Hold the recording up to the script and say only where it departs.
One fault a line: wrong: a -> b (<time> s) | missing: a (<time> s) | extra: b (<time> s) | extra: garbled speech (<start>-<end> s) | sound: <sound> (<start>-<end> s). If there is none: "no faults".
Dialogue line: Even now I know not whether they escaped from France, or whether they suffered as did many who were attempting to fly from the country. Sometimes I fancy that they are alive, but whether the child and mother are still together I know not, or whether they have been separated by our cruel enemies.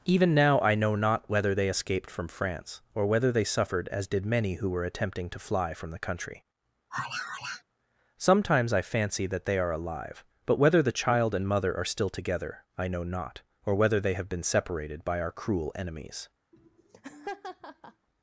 sound: sigh (6.9-7.6 s)
sound: laugh (16.5-18.1 s)